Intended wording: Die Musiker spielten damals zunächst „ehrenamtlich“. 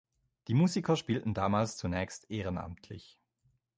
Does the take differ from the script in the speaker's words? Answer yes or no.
no